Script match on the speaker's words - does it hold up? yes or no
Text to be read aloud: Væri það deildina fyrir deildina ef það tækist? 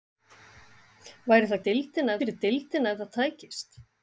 yes